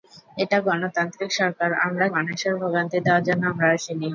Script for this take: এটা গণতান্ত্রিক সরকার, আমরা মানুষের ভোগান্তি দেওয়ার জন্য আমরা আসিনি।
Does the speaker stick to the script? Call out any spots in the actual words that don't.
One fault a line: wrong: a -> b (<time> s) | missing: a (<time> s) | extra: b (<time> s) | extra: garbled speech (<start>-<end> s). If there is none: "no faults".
no faults